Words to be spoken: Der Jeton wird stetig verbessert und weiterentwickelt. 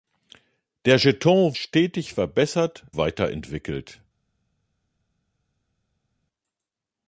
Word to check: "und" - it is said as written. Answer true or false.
false